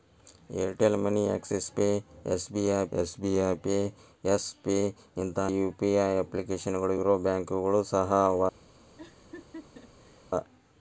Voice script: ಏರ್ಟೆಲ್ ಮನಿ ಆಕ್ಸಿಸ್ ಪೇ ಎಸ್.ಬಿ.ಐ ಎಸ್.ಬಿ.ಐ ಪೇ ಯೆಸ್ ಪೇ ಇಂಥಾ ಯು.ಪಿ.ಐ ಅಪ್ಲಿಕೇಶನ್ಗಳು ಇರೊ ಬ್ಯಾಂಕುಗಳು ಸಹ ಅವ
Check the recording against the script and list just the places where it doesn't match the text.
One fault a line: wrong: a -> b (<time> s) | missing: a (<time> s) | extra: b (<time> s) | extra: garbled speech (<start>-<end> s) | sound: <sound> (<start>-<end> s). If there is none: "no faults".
sound: laugh (9.0-10.3 s)